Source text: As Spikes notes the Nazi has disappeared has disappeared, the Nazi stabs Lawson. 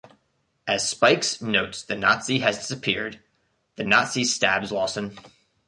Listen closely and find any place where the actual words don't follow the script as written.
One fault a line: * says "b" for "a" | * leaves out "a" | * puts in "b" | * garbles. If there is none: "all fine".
* leaves out "has disappeared"